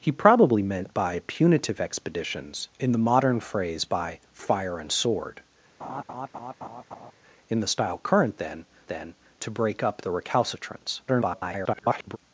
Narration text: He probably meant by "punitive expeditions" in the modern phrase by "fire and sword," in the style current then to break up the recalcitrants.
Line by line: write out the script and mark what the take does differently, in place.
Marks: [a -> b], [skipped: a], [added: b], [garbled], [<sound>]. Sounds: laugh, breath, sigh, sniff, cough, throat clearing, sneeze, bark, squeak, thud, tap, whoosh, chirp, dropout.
He probably meant by "punitive expeditions" in the modern phrase by "fire and sword," [laugh] in the style current then [added: then] to break up the recalcitrants. [garbled]